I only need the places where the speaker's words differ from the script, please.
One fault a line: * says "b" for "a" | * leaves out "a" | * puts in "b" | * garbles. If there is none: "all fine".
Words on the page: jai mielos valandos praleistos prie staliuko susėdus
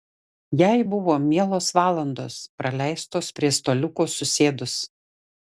* puts in "buvo"